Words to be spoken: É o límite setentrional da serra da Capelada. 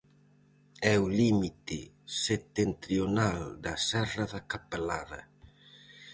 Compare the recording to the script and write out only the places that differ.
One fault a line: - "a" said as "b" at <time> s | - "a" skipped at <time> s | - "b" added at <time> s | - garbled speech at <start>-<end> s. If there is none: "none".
none